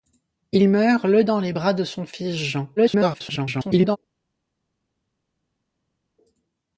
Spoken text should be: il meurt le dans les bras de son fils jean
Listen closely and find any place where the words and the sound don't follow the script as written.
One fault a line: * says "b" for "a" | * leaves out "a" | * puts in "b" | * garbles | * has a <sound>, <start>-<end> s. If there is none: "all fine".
* garbles